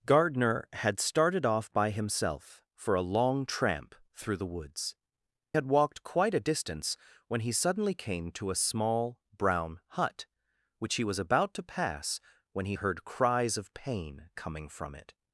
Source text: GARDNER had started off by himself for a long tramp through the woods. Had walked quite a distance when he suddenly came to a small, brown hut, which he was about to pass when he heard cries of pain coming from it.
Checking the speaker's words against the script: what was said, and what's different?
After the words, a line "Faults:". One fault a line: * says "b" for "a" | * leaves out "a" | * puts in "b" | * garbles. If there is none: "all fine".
GARDNER had started off by himself for a long tramp through the woods. Had walked quite a distance when he suddenly came to a small, brown hut, which he was about to pass when he heard cries of pain coming from it.
Faults:
all fine